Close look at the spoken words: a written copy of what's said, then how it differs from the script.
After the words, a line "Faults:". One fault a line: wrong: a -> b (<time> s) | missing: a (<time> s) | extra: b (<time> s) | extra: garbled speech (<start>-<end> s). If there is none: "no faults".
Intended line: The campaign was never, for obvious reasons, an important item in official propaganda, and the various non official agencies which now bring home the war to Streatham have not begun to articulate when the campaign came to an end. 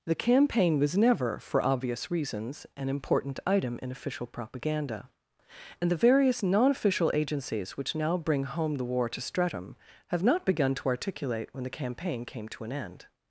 The campaign was never, for obvious reasons, an important item in official propaganda, and the various non official agencies which now bring home the war to Streatham have not begun to articulate when the campaign came to an end.
Faults:
no faults